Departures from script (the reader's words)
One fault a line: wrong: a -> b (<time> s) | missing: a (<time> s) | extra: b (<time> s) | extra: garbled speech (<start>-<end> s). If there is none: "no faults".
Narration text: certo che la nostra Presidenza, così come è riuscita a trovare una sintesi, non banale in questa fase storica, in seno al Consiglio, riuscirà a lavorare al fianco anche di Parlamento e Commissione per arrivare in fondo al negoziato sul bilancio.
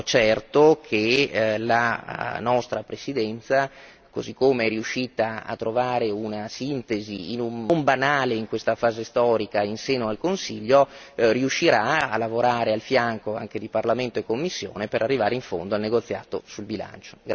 no faults